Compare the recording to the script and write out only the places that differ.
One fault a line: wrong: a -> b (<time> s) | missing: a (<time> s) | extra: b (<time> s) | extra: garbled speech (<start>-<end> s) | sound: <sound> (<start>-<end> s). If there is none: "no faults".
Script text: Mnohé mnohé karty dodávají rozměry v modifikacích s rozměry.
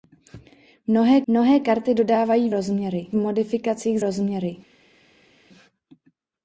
no faults